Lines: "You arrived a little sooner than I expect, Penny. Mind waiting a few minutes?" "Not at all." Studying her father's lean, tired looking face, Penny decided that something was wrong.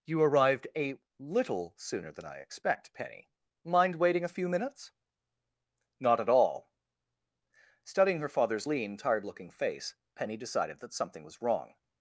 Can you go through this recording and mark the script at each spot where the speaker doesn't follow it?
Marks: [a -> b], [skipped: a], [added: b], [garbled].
"You arrived a little sooner than I expect, Penny. Mind waiting a few minutes?" "Not at all." Studying her father's lean, tired looking face, Penny decided that something was wrong.